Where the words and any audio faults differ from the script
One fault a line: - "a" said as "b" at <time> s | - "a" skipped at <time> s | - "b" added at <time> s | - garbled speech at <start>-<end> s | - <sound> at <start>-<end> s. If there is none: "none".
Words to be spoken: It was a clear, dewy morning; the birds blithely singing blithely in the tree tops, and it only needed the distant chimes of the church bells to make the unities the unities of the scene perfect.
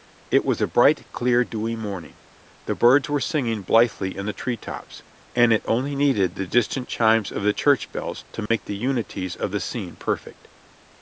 - "bright" added at 0.7 s
- "blithely" said as "were" at 3.1 s
- dropout at 8.5-8.5 s
- "the unities" skipped at 9.4 s